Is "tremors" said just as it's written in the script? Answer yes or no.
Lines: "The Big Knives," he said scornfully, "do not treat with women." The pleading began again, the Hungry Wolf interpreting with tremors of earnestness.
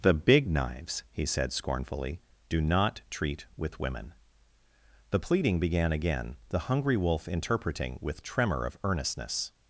no